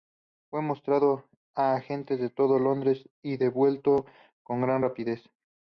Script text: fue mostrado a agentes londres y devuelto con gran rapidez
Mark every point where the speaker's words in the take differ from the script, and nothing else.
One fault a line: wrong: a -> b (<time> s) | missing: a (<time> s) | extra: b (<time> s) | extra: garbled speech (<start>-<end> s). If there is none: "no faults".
extra: de todo (2.2 s)